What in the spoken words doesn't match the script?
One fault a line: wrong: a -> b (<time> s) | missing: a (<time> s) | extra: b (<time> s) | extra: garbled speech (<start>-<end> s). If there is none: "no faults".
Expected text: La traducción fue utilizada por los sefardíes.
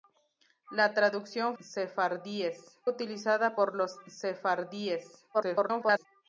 wrong: fue -> sefardíes (1.6 s)
extra: garbled speech (5.3-6.1 s)